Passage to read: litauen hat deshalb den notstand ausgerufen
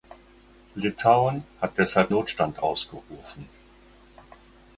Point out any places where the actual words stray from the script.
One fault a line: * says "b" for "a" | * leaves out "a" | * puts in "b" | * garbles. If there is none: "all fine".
* leaves out "den"